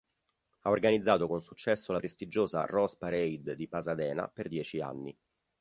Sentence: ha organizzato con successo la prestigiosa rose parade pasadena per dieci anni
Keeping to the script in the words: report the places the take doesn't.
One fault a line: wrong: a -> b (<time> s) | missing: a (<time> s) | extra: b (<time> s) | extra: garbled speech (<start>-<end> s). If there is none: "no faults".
extra: di (3.5 s)